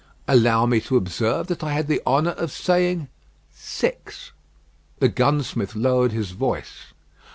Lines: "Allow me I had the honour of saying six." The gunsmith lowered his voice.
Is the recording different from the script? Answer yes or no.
yes